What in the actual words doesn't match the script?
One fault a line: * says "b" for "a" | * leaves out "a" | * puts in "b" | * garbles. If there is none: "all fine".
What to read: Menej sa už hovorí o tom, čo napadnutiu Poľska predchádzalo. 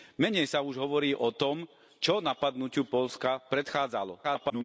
* garbles